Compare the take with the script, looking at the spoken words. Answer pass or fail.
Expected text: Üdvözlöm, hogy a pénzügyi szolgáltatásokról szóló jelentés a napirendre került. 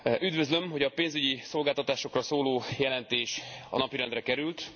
pass